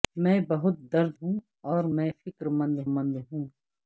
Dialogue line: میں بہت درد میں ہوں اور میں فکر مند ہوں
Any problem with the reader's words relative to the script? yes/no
yes